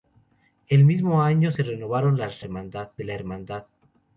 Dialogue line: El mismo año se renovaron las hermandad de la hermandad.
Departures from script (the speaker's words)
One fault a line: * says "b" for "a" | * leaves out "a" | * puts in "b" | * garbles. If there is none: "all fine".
all fine